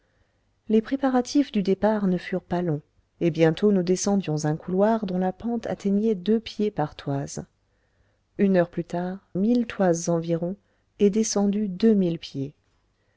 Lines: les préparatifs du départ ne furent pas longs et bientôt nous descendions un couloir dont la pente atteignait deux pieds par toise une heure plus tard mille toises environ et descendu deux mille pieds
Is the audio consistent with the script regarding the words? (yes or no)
yes